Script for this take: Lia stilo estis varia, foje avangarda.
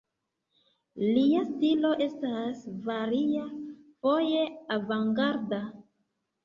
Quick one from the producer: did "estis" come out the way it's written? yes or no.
no